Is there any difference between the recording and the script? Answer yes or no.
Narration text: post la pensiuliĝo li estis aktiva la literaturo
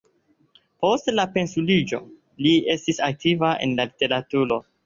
yes